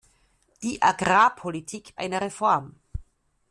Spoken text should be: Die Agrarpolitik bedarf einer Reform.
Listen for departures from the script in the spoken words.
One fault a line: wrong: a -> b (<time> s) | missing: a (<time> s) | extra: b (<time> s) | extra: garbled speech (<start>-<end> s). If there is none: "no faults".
missing: bedarf (1.9 s)